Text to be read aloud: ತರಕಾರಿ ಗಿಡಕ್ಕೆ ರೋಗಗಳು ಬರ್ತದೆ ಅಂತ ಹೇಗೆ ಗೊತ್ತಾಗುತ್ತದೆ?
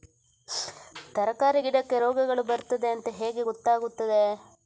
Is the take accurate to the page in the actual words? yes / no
yes